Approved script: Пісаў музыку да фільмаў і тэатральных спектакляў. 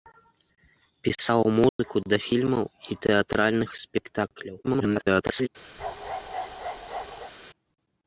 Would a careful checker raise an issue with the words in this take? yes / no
yes